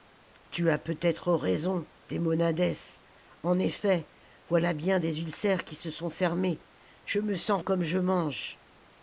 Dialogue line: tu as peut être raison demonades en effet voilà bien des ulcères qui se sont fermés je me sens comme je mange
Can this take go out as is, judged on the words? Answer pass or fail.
pass